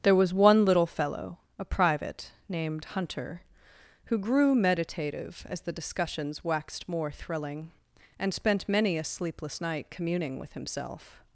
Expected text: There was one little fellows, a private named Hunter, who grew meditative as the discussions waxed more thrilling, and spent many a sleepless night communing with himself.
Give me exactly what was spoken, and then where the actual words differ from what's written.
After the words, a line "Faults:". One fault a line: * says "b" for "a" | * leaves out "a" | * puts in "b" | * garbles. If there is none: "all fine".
There was one little fellow, a private named Hunter, who grew meditative as the discussions waxed more thrilling, and spent many a sleepless night communing with himself.
Faults:
* says "fellow" for "fellows"